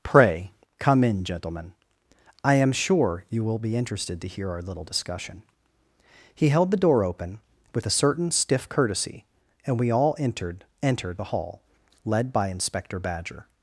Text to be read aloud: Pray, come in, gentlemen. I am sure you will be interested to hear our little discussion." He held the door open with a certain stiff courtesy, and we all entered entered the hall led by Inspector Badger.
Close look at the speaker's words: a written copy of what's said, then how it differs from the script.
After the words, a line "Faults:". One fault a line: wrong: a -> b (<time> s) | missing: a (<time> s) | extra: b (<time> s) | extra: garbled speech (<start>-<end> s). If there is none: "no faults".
Pray, come in, gentlemen. I am sure you will be interested to hear our little discussion." He held the door open with a certain stiff courtesy, and we all entered entered the hall led by Inspector Badger.
Faults:
no faults